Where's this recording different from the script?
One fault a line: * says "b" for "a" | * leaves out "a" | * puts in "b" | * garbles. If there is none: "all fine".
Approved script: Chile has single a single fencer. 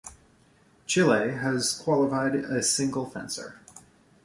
* says "qualified" for "single"